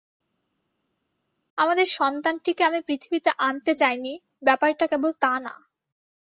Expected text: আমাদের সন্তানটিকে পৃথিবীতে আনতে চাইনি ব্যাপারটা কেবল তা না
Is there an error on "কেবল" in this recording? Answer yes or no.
no